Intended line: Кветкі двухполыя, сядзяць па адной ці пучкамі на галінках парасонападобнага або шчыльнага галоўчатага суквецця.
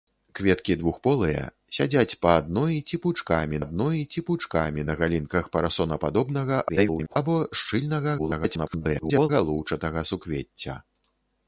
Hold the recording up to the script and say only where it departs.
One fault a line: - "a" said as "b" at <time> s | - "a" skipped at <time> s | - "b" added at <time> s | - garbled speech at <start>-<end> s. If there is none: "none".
- "адной ці пучкамі" added at 3.6 s
- garbled speech at 6.7-7.2 s
- garbled speech at 8.2-9.3 s